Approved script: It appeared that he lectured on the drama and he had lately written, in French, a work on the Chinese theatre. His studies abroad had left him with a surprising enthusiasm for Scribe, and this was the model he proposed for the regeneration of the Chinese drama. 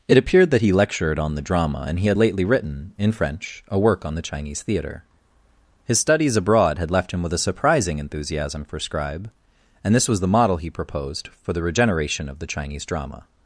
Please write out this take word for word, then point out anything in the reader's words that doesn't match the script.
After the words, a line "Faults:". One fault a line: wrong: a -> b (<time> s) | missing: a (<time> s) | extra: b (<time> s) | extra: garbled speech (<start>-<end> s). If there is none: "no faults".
It appeared that he lectured on the drama and he had lately written, in French, a work on the Chinese theatre. His studies abroad had left him with a surprising enthusiasm for Scribe, and this was the model he proposed for the regeneration of the Chinese drama.
Faults:
no faults